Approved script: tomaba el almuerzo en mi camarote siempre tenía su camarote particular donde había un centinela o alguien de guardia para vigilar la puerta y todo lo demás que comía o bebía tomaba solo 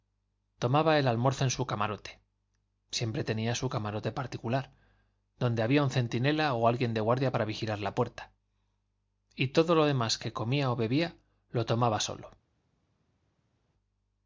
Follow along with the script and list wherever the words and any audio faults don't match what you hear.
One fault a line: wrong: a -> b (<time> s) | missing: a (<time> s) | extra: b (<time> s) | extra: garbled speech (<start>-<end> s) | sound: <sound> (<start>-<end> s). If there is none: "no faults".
wrong: mi -> su (1.5 s)
extra: lo (11.5 s)